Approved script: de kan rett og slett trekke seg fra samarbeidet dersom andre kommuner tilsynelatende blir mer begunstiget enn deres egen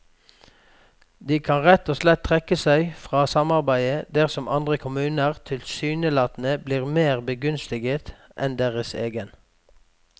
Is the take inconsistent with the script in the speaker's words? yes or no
no